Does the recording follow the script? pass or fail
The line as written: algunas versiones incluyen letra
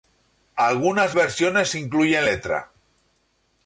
pass